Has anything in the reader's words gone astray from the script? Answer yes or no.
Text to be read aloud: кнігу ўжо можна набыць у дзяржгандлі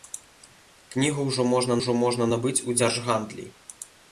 yes